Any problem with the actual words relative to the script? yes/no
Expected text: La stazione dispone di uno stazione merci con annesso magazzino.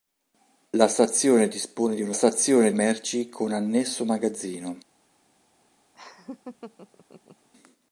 no